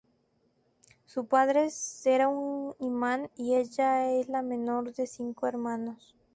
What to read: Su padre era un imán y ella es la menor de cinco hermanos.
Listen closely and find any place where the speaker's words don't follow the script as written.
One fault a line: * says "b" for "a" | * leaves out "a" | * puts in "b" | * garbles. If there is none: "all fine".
all fine